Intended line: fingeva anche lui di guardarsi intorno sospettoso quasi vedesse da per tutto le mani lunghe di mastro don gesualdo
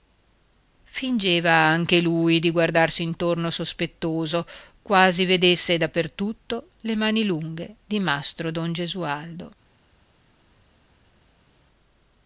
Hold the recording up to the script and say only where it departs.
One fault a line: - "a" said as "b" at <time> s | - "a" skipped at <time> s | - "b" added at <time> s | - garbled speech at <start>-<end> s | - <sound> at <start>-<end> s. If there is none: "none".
none